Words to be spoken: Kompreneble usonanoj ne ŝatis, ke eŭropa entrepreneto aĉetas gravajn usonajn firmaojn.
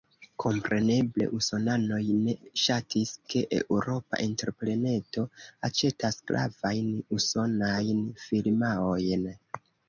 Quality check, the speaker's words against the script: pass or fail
pass